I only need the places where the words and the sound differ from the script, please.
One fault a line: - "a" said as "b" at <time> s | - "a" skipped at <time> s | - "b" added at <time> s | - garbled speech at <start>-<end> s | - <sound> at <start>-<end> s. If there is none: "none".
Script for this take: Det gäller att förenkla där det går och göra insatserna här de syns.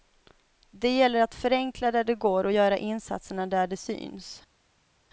- "här" said as "där" at 3.5 s